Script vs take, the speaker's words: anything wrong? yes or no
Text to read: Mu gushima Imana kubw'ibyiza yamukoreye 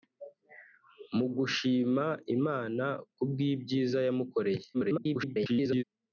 yes